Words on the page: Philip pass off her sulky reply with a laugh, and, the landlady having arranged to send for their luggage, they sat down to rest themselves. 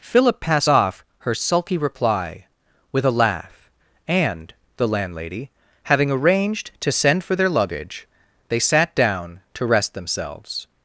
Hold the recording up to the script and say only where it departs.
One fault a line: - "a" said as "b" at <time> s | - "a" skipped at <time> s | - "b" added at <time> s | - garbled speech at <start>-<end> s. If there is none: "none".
none